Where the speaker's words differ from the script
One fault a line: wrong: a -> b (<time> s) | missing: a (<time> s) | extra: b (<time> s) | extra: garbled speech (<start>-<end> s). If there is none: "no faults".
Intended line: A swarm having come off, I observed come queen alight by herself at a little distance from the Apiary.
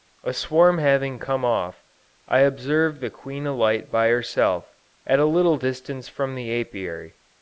wrong: come -> the (3.0 s)